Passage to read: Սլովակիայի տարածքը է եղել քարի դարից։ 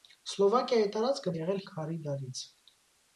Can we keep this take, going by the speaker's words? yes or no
yes